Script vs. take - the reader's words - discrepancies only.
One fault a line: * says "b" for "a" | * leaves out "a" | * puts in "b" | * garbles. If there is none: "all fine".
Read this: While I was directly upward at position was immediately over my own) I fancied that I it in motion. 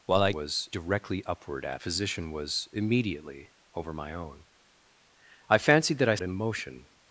all fine